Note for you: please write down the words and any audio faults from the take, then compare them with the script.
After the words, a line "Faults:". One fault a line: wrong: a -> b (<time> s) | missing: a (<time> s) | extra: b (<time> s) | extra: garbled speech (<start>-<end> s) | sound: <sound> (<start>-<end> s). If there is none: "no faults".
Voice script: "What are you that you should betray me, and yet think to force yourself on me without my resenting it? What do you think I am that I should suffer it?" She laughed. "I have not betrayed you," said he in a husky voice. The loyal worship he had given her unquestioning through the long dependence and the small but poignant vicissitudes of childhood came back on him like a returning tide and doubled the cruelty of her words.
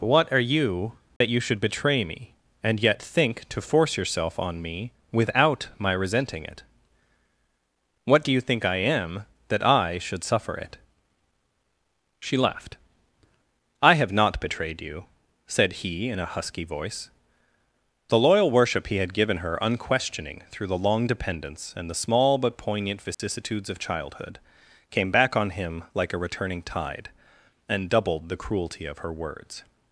"What are you that you should betray me, and yet think to force yourself on me without my resenting it? What do you think I am that I should suffer it?" She laughed. "I have not betrayed you," said he in a husky voice. The loyal worship he had given her unquestioning through the long dependence and the small but poignant vicissitudes of childhood came back on him like a returning tide and doubled the cruelty of her words.
Faults:
sound: dropout (1.2-1.2 s)
sound: dropout (23.1-23.2 s)